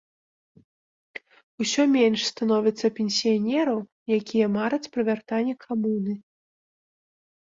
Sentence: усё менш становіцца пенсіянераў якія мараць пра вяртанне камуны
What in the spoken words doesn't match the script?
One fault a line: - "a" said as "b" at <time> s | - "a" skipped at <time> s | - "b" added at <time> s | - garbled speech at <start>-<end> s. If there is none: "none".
none